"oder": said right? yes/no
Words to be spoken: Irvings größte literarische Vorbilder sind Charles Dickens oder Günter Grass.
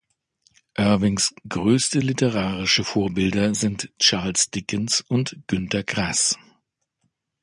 no